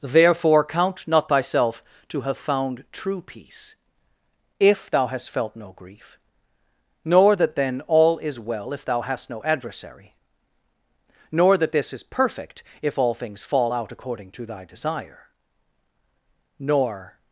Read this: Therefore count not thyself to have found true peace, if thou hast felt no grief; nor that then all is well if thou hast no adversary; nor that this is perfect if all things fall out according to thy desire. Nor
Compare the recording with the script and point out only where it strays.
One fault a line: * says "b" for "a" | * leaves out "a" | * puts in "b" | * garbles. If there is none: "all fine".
all fine